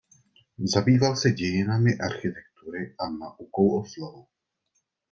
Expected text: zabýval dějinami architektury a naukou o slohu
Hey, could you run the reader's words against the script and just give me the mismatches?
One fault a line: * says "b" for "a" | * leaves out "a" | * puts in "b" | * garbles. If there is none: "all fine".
* puts in "se"